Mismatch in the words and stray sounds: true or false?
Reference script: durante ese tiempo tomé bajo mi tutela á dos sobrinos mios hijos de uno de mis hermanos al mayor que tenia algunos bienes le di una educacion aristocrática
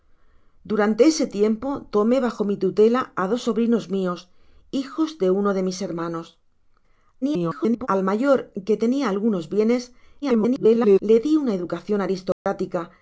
true